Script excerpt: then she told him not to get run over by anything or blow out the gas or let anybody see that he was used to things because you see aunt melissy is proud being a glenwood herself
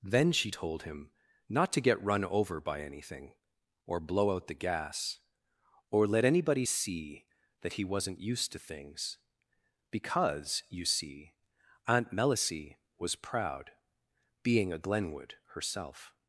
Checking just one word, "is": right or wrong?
wrong